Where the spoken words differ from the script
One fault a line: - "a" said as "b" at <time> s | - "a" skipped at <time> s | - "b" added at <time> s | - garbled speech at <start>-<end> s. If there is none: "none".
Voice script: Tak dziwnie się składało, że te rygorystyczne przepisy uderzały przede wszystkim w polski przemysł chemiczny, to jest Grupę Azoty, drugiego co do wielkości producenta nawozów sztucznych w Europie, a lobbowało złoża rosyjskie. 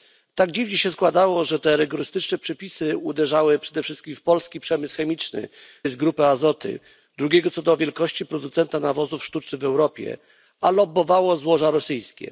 - "to" skipped at 5.5 s